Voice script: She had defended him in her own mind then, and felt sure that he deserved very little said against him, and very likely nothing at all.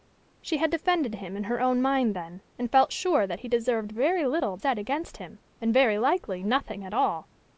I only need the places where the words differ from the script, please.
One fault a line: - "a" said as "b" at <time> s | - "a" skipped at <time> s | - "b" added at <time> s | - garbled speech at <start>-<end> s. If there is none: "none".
none